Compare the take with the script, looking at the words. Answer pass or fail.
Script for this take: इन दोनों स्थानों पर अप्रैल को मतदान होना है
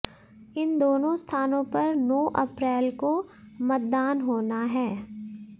fail